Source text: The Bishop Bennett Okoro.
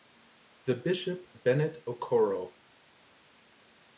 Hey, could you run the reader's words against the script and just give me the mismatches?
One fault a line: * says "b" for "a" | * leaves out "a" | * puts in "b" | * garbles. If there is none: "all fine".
all fine